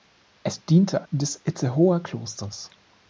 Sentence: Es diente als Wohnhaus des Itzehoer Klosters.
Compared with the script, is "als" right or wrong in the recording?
wrong